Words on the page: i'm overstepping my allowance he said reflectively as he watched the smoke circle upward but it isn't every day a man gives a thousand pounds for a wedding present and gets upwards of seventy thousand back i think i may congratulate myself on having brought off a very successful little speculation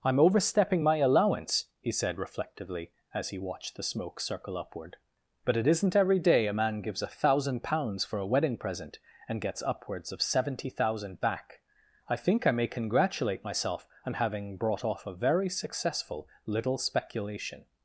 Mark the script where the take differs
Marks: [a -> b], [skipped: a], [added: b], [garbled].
i'm overstepping my allowance he said reflectively as he watched the smoke circle upward but it isn't every day a man gives a thousand pounds for a wedding present and gets upwards of seventy thousand back i think i may congratulate myself on having brought off a very successful little speculation